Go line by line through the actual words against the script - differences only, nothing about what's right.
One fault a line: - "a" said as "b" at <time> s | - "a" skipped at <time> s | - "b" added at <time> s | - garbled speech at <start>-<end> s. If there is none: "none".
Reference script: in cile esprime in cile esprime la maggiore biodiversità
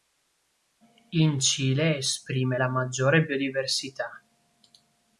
- "in cile esprime" skipped at 2.6 s